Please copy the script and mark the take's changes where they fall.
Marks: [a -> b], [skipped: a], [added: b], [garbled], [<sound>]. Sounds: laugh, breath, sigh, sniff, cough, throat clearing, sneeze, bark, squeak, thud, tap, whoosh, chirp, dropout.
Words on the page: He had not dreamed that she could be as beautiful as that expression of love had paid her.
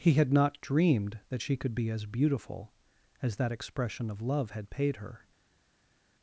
He had not dreamed that she could be as beautiful as that expression of love had paid her.